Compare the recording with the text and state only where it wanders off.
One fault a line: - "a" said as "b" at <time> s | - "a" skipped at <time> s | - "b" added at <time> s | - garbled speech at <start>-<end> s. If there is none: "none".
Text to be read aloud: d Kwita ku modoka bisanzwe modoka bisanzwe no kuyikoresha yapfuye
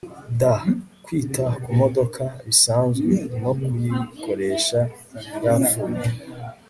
- "modoka bisanzwe" skipped at 3.1 s